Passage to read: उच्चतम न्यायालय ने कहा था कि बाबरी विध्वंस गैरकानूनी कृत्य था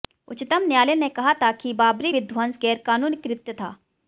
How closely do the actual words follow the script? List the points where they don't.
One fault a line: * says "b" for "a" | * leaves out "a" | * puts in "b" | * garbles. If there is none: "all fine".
all fine